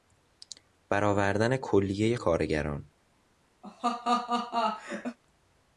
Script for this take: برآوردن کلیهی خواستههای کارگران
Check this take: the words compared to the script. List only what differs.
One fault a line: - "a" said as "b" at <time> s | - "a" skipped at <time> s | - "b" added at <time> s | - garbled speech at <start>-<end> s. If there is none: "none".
- "خواستههای" skipped at 2.1 s